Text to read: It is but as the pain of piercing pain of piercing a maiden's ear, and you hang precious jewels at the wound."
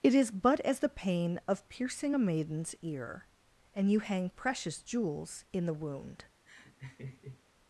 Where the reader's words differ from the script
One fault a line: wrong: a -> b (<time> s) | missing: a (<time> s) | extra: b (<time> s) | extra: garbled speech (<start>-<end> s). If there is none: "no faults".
missing: pain of piercing (2.1 s)
wrong: at -> in (5.5 s)